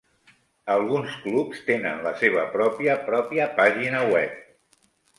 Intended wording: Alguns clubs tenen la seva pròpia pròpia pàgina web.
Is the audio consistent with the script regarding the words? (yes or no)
yes